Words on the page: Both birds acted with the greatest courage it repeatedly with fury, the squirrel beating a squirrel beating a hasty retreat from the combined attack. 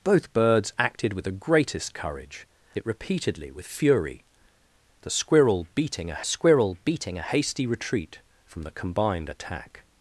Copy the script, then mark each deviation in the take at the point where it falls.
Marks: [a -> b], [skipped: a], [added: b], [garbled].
Both birds acted with the greatest courage it repeatedly with fury, the squirrel beating a squirrel beating a hasty retreat from the combined attack.